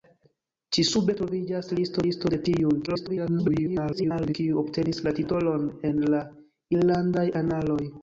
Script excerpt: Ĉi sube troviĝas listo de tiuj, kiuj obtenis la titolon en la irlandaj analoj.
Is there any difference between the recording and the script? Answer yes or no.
yes